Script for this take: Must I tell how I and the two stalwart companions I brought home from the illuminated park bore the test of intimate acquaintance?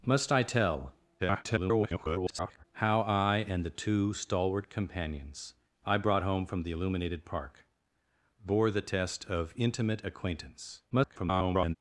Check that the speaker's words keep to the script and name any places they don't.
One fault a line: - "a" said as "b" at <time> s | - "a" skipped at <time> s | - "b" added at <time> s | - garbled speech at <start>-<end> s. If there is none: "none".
- garbled speech at 1.2-2.6 s
- garbled speech at 10.9-11.8 s